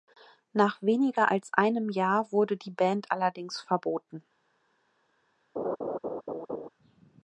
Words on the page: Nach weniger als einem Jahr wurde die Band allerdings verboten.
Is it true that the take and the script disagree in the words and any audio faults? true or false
true